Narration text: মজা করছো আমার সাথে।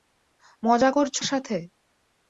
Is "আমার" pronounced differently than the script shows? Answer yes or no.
yes